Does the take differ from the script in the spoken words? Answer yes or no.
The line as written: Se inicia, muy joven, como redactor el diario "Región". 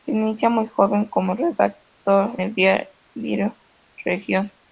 no